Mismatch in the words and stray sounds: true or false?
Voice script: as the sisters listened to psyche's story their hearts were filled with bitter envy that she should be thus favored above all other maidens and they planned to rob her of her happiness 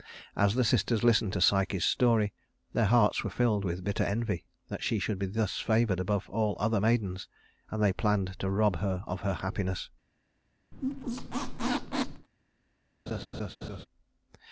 true